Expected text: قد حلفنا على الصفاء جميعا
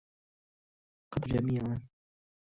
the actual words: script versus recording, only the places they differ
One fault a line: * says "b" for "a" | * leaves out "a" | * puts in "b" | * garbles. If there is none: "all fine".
* leaves out "حلفنا على الصفاء"